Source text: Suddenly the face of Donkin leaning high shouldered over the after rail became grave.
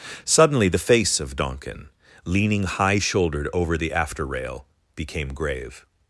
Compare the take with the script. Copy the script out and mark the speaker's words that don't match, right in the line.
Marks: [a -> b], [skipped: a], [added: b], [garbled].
Suddenly the face of Donkin leaning high shouldered over the after rail became grave.